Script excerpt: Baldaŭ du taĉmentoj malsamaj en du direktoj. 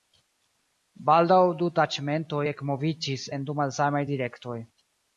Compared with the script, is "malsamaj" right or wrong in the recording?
wrong